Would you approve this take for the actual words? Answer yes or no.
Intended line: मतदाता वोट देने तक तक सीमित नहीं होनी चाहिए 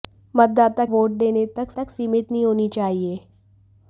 yes